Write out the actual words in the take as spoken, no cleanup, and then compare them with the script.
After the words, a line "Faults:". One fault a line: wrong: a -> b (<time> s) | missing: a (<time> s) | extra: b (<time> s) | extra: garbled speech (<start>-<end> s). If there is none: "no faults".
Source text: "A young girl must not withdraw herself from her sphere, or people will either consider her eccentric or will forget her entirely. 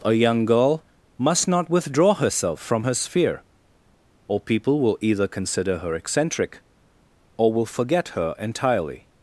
"A young girl must not withdraw herself from her sphere, or people will either consider her eccentric or will forget her entirely.
Faults:
no faults